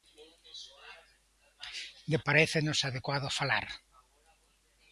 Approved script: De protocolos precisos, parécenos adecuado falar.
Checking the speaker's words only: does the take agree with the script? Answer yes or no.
no